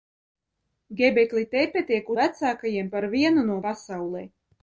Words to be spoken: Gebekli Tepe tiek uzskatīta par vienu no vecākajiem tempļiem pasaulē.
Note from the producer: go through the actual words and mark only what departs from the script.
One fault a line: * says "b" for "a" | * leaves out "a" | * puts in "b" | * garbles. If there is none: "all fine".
* says "vecākajiem" for "uzskatīta"
* leaves out "vecākajiem tempļiem"